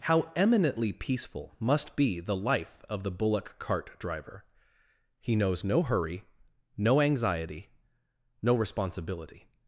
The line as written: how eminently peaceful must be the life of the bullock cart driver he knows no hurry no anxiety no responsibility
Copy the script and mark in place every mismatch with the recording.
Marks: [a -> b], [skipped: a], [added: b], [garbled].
how eminently peaceful must be the life of the bullock cart driver he knows no hurry no anxiety no responsibility